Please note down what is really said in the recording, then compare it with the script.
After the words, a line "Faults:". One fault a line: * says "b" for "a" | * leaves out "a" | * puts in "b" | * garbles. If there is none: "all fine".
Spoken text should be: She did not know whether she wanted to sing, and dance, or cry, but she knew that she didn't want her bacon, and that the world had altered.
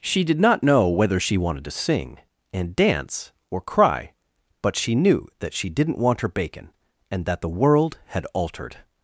She did not know whether she wanted to sing, and dance, or cry, but she knew that she didn't want her bacon, and that the world had altered.
Faults:
all fine